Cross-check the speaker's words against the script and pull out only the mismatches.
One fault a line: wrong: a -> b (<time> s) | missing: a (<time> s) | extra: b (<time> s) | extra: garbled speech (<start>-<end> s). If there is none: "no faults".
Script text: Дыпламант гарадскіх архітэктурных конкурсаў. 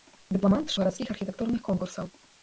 no faults